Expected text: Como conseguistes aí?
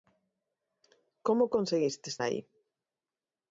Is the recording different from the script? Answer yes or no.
no